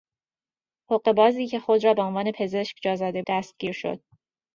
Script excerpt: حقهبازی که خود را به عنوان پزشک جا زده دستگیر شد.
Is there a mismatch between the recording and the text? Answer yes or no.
no